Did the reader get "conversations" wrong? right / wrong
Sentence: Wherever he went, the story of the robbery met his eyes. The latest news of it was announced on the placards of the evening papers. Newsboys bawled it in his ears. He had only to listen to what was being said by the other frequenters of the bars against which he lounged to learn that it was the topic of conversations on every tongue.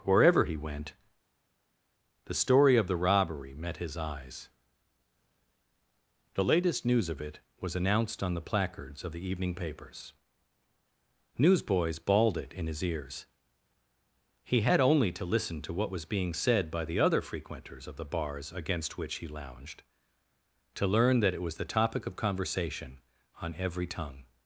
wrong